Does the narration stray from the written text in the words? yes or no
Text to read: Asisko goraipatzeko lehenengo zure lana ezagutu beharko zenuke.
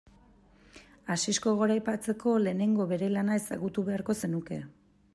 yes